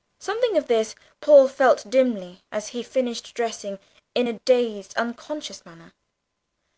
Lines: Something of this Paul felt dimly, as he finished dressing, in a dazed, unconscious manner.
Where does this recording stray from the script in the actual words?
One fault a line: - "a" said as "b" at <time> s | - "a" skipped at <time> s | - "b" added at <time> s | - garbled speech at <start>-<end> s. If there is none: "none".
none